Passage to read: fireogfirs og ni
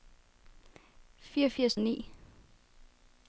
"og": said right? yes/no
yes